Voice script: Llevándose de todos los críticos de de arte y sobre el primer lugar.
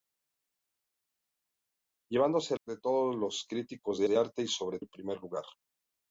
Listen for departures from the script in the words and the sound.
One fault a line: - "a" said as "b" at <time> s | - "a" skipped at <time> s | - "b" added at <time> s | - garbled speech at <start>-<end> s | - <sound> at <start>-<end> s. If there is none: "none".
none